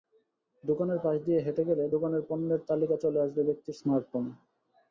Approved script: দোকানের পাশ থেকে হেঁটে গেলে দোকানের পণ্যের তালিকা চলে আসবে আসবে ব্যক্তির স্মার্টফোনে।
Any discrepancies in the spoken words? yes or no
yes